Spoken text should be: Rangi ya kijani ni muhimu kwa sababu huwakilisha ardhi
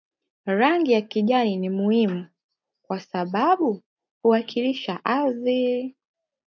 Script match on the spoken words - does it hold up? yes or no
yes